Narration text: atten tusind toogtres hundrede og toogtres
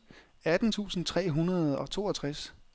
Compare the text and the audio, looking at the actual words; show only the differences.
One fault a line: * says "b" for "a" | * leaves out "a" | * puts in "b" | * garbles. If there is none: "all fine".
* says "tre" for "toogtres"